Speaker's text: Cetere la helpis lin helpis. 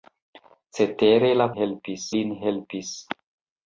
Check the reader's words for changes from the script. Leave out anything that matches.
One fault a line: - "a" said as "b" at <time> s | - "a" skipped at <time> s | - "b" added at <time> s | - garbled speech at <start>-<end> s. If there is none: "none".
none